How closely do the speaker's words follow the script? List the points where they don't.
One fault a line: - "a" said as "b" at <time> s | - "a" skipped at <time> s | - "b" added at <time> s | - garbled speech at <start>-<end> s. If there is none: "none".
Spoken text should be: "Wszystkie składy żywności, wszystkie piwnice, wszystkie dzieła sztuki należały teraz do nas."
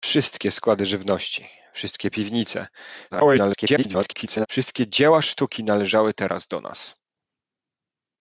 - garbled speech at 3.1-4.5 s